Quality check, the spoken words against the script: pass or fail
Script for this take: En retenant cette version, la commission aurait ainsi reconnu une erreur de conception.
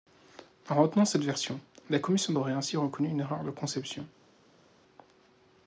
pass